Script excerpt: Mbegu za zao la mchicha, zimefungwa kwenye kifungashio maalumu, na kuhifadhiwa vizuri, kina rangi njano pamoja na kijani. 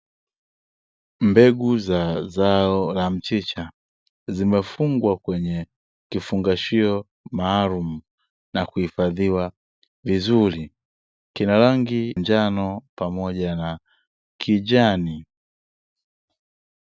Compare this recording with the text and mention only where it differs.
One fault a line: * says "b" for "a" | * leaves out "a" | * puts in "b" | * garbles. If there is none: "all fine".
all fine